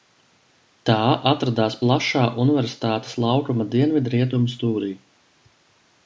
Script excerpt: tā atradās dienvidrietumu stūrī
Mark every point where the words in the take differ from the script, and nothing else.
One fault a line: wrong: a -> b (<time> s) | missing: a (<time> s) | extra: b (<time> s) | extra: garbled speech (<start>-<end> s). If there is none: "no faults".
extra: plašā universitātes laukuma (1.8 s)